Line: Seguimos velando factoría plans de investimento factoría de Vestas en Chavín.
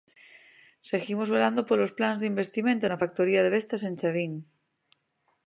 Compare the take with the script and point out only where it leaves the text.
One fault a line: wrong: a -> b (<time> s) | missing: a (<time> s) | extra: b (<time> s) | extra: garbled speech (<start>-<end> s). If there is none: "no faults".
wrong: factoría -> polos (1.7 s)
extra: na (2.9 s)